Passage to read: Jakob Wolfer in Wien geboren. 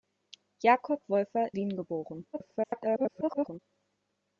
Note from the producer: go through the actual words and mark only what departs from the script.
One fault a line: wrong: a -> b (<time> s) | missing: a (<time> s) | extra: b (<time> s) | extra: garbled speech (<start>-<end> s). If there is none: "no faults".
missing: in (1.5 s)
extra: garbled speech (2.3-3.6 s)